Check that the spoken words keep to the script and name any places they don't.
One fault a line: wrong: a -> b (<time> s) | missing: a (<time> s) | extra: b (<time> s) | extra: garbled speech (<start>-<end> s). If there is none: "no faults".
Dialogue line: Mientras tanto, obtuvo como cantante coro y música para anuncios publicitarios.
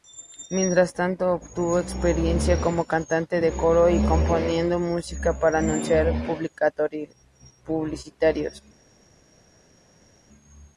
extra: experiencia (1.8 s)
extra: de (3.4 s)
extra: componiendo (4.1 s)